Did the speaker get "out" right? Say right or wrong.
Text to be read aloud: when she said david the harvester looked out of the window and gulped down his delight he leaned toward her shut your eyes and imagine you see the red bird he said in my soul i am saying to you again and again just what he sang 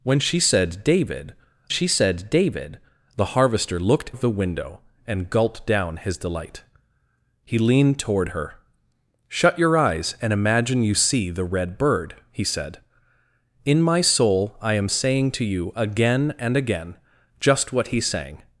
wrong